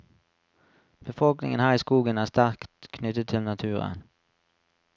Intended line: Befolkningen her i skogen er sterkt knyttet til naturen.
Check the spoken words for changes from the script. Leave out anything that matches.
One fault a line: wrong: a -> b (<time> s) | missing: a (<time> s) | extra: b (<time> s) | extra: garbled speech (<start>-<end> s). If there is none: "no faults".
no faults